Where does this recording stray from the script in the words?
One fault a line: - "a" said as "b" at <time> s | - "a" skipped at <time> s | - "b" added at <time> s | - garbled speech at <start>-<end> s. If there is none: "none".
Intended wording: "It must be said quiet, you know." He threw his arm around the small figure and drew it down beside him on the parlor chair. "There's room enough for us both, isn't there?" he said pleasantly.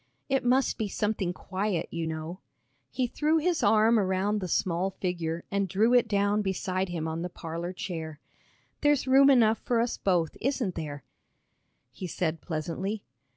- "said" said as "something" at 0.9 s